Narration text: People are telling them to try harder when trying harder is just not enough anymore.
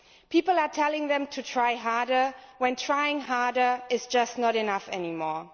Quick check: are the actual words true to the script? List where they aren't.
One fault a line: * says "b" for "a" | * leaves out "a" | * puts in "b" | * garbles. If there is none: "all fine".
all fine